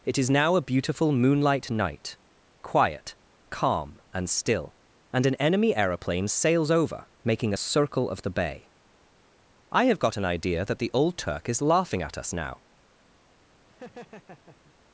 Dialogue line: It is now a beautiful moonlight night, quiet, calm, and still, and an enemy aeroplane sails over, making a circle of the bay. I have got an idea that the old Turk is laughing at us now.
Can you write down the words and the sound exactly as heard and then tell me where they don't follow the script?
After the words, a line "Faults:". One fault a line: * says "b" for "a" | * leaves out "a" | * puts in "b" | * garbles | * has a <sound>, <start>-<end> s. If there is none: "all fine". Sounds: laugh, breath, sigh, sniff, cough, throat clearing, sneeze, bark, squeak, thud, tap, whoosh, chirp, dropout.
It is now a beautiful moonlight night, quiet, calm, and still, and an enemy aeroplane sails over, making a circle of the bay. I have got an idea that the old Turk is laughing at us now.
Faults:
* has a laugh, 13.7-14.8 s